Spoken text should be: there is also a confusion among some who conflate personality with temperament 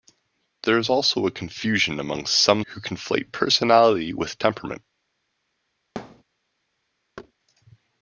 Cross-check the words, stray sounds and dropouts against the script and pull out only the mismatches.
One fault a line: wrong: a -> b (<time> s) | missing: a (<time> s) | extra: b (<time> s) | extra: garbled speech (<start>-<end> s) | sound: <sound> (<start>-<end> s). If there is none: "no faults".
sound: thud (6.0-6.2 s)
sound: thud (7.2-7.3 s)